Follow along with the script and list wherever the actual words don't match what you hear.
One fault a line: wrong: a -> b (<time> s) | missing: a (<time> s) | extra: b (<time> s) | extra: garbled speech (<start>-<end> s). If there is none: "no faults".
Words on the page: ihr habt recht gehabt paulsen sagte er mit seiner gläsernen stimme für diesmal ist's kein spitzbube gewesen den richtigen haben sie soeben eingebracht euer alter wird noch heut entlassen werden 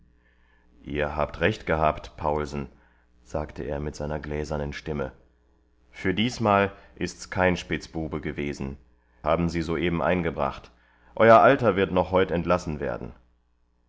missing: den richtigen (8.8 s)